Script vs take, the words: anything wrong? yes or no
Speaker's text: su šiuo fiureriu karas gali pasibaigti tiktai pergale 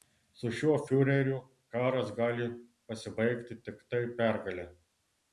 no